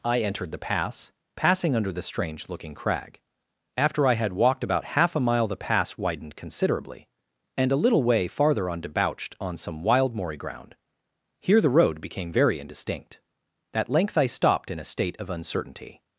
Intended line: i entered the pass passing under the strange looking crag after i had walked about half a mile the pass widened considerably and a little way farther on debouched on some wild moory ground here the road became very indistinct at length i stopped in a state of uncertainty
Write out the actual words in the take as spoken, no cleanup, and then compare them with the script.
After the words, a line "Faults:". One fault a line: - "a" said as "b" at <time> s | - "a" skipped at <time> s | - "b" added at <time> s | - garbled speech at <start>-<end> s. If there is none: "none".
i entered the pass passing under the strange looking crag after i had walked about half a mile the pass widened considerably and a little way farther on debouched on some wild moory ground here the road became very indistinct at length i stopped in a state of uncertainty
Faults:
none